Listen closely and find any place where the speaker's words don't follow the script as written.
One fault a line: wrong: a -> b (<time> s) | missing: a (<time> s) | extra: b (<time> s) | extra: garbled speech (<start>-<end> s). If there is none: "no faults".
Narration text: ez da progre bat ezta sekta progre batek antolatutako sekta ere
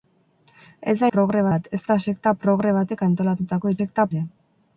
no faults